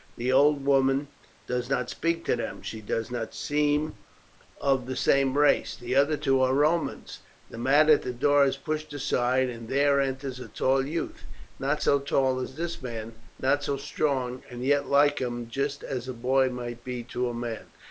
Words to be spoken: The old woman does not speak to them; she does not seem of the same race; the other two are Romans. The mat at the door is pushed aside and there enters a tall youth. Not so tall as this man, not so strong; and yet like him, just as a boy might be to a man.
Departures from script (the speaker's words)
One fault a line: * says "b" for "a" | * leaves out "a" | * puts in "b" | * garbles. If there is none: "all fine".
all fine